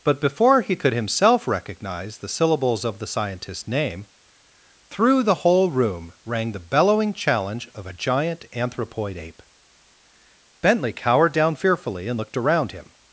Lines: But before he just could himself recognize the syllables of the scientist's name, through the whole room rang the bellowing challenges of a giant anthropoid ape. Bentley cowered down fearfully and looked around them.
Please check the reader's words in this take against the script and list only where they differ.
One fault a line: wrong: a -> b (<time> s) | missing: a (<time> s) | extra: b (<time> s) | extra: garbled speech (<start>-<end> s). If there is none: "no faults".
missing: just (0.8 s)
wrong: challenges -> challenge (7.1 s)
wrong: them -> him (12.7 s)